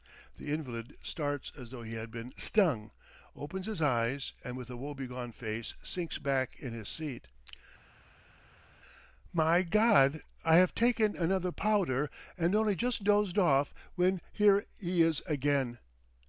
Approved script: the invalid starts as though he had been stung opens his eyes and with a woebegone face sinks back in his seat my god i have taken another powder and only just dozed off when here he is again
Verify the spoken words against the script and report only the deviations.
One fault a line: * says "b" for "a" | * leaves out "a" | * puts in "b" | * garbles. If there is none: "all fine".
all fine